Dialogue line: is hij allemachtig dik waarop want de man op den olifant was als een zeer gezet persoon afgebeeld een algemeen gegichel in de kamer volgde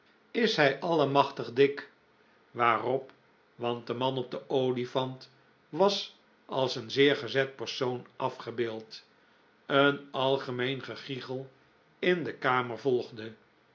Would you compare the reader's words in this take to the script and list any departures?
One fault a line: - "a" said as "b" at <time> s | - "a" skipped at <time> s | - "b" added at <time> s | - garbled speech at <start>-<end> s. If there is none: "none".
none